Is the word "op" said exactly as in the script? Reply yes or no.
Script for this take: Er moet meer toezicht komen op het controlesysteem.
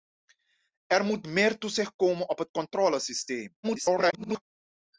yes